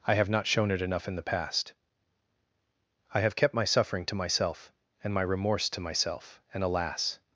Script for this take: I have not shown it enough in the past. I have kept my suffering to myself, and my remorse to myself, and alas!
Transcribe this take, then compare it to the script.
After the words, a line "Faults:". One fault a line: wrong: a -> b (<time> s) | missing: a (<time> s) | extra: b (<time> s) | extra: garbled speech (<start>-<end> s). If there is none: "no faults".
I have not shown it enough in the past. I have kept my suffering to myself, and my remorse to myself, and alas!
Faults:
no faults